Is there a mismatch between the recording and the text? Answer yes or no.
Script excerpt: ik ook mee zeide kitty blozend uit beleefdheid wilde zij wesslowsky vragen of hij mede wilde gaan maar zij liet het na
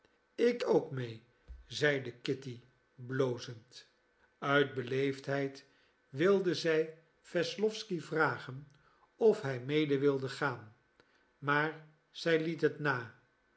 no